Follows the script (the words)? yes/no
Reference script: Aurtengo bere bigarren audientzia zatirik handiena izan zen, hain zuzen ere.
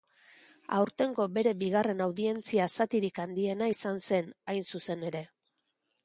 yes